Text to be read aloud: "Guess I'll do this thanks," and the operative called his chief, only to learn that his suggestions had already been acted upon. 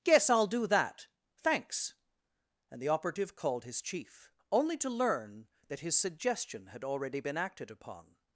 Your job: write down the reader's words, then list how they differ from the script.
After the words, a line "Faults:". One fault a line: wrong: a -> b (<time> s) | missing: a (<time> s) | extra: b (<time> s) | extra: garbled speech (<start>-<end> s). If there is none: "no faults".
"Guess I'll do that thanks," and the operative called his chief, only to learn that his suggestion had already been acted upon.
Faults:
wrong: this -> that (0.7 s)
wrong: suggestions -> suggestion (6.0 s)